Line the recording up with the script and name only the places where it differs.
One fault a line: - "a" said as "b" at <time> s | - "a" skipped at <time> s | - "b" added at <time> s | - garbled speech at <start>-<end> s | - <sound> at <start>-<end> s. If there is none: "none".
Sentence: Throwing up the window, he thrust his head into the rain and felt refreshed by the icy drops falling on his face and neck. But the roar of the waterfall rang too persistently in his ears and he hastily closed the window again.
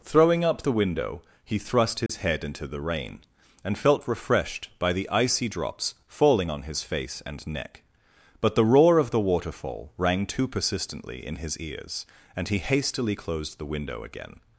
- dropout at 2.1-2.1 s